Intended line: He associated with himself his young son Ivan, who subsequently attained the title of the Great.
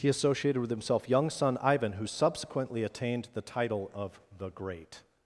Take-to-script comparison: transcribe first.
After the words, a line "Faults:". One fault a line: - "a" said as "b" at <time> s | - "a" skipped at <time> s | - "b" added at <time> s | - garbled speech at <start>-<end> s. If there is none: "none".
He associated with himself young son Ivan, who subsequently attained the title of the Great.
Faults:
- "his" skipped at 1.1 s